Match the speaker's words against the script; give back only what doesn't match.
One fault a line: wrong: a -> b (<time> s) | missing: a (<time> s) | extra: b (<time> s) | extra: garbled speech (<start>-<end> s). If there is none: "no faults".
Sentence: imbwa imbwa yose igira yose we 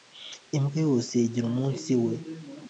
missing: imbwa (0.8 s)
wrong: yose -> umunsi (1.5 s)